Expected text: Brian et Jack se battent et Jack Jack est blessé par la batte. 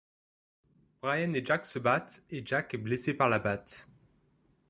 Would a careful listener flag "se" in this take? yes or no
no